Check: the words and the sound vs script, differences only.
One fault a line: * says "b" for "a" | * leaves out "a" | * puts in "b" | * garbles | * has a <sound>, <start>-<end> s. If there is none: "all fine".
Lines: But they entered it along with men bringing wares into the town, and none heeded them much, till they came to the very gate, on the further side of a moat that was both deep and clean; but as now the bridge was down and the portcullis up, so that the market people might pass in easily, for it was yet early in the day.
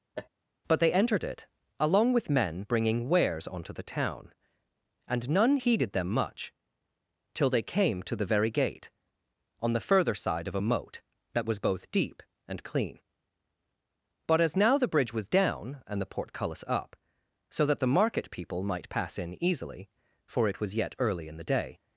* has a laugh, 0.1-0.3 s
* says "onto" for "into"